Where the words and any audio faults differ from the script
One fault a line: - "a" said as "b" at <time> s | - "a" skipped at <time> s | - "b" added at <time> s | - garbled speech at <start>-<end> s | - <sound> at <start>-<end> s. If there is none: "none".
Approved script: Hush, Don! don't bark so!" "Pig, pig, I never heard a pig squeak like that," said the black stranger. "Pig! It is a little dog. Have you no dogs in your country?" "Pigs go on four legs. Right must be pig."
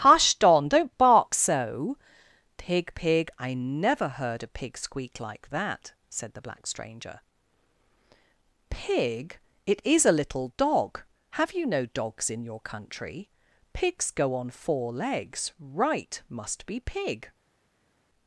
none